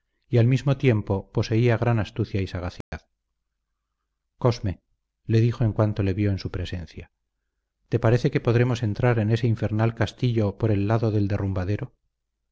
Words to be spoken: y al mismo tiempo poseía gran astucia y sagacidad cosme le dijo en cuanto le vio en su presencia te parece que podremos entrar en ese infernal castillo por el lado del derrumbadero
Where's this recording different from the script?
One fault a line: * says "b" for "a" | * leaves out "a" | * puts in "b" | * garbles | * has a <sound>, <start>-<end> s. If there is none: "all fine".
* has a dropout, 2.8-2.9 s